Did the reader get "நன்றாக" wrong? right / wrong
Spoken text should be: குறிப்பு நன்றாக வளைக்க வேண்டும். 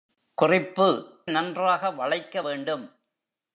right